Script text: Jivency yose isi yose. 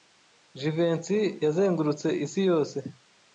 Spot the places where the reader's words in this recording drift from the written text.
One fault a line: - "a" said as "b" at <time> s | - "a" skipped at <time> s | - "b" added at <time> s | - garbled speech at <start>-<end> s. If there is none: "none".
- "yose" said as "yazengurutse" at 1.4 s